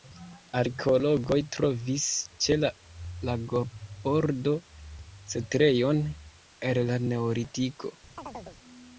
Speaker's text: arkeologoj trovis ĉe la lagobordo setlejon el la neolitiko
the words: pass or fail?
pass